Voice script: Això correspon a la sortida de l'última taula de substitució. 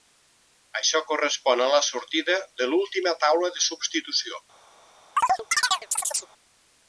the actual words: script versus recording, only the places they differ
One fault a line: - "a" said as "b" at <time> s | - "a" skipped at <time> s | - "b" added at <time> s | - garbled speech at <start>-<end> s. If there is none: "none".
none